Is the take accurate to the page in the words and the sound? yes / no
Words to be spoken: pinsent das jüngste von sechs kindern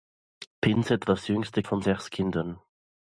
yes